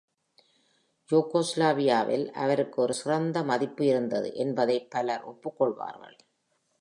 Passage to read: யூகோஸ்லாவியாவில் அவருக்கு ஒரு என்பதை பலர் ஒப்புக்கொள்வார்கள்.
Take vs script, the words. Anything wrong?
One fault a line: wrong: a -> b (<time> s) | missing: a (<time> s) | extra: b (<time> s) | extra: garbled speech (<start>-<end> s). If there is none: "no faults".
extra: சிறந்த மதிப்பு இருந்தது (2.9 s)